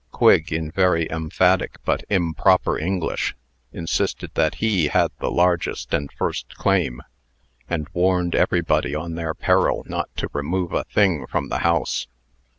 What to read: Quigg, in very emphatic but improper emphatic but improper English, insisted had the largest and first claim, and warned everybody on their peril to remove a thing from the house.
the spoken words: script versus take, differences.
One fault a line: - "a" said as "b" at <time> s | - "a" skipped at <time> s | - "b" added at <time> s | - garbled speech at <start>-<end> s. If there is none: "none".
- "emphatic but improper English insisted" said as "English insisted that he" at 2.8 s
- "not" added at 9.9 s